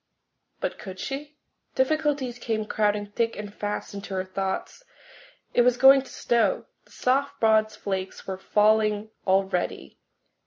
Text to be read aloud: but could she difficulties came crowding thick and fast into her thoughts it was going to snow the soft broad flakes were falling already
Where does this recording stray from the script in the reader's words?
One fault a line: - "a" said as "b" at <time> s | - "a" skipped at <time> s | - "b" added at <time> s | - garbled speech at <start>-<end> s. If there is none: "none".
none